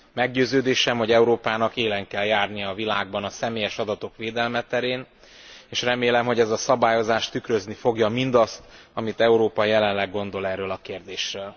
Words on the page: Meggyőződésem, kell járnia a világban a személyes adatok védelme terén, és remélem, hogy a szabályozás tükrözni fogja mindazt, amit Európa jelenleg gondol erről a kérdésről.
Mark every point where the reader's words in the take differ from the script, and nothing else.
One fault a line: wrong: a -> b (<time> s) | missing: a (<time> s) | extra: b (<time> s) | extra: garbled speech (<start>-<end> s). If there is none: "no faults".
extra: hogy Európának élen (1.0 s)
extra: ez (6.4 s)